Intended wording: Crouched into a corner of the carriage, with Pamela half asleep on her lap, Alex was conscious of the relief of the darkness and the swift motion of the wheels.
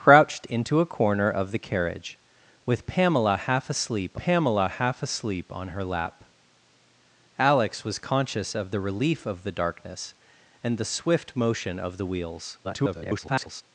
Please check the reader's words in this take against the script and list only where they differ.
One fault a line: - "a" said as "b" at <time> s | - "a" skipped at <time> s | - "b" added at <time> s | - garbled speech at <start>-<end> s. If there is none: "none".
- "Pamela half asleep" added at 4.2 s
- garbled speech at 12.6-13.6 s